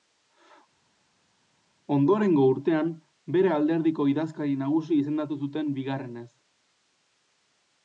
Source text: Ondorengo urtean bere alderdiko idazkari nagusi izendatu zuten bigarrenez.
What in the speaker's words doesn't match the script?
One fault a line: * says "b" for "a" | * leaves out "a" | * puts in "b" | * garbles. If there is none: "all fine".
all fine